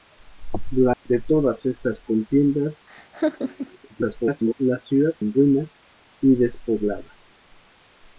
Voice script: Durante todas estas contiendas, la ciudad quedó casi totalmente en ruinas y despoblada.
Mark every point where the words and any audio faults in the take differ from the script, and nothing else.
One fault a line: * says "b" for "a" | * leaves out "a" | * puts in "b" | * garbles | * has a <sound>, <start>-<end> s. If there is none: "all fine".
* has a dropout, 0.9-1.1 s
* has a laugh, 2.9-3.8 s
* garbles
* leaves out "quedó casi totalmente"